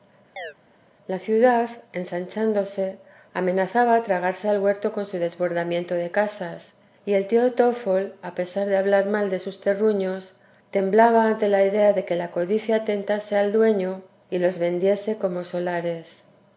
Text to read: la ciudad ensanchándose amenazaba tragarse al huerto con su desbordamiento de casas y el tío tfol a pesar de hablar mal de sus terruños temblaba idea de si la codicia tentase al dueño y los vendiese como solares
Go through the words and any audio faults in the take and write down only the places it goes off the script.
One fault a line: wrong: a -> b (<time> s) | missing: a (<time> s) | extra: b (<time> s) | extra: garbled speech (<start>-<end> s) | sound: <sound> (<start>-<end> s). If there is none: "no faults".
sound: chirp (0.4-0.5 s)
extra: ante la (11.3 s)
wrong: si -> que (12.0 s)